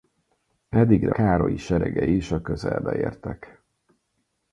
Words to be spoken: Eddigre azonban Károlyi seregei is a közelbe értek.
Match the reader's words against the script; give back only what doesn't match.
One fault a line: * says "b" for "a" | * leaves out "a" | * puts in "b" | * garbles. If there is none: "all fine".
* leaves out "azonban"